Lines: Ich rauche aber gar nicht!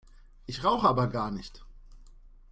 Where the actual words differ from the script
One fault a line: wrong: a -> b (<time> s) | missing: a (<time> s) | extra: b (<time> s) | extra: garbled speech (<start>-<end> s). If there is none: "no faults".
no faults